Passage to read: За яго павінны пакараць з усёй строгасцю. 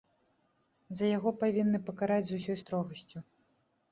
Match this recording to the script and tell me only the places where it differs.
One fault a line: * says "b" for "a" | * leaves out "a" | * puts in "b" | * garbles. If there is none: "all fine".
all fine